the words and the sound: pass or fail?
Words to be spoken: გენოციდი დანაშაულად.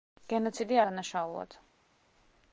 pass